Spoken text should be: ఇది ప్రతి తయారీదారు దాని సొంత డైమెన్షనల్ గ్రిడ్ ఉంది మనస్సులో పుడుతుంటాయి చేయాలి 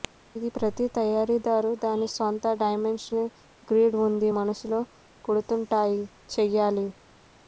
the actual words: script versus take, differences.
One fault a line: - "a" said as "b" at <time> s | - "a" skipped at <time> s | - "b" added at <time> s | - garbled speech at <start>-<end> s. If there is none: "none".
none